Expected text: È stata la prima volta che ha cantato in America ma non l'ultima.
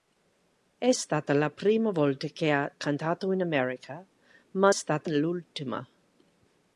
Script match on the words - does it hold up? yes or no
no